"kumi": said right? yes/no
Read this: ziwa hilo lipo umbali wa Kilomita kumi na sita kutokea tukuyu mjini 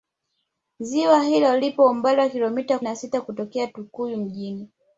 no